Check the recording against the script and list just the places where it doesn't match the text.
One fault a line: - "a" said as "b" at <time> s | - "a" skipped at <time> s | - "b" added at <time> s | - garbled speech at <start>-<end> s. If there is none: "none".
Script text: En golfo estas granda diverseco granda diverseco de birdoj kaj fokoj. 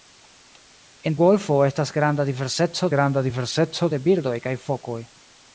none